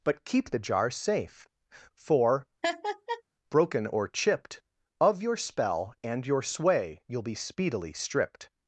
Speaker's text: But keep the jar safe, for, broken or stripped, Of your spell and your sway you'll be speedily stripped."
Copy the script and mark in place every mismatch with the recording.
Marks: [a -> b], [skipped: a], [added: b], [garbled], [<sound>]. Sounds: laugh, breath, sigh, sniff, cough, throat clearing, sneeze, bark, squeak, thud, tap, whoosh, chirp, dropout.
But keep the jar safe, for, [laugh] broken or [stripped, -> chipped] Of your spell and your sway you'll be speedily stripped."